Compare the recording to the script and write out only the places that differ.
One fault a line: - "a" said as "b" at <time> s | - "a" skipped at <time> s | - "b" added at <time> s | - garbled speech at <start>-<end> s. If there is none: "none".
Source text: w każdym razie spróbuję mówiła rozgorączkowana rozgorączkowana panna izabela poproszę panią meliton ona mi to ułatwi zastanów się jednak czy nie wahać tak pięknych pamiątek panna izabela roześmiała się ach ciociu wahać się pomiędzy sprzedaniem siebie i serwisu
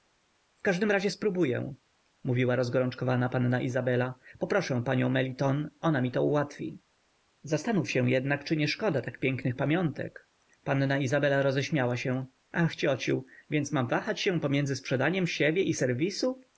- "rozgorączkowana" skipped at 3.3 s
- "wahać" said as "szkoda" at 8.7 s
- "więc mam" added at 13.5 s